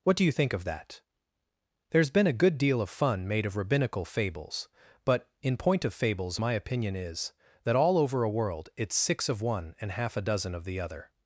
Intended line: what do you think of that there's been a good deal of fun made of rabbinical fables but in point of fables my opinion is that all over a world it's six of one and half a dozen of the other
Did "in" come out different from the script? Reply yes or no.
no